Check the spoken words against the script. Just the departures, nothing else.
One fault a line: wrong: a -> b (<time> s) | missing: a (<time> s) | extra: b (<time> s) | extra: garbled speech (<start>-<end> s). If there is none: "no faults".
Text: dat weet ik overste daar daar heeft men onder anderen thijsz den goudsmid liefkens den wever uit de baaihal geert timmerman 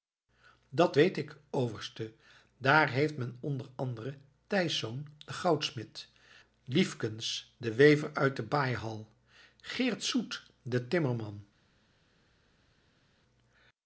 missing: daar (2.9 s)
extra: soet den (10.0 s)